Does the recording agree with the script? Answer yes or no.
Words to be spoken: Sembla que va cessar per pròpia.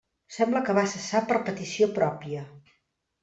no